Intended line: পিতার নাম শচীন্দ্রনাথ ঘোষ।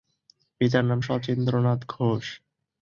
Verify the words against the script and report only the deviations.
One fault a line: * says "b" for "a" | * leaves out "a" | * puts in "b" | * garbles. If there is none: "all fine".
all fine